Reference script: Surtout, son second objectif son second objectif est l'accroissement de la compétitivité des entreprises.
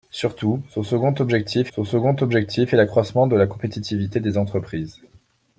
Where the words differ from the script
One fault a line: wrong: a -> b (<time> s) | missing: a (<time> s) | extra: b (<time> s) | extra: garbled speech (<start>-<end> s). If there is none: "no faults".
no faults